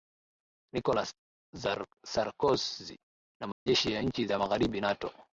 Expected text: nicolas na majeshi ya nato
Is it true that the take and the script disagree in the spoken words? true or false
true